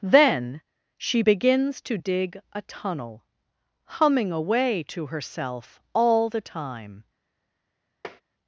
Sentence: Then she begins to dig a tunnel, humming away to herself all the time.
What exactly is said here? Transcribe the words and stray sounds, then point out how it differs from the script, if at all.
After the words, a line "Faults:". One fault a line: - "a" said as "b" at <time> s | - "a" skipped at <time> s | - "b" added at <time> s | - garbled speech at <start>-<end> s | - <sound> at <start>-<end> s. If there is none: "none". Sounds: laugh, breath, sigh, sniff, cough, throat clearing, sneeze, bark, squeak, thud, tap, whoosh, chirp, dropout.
Then she begins to dig a tunnel, humming away to herself all the time.
Faults:
- tap at 8.0-8.2 s